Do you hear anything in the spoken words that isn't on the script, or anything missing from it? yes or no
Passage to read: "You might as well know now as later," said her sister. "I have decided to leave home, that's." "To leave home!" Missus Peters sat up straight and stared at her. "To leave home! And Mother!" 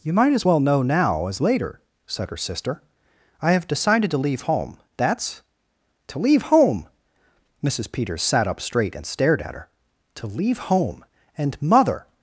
no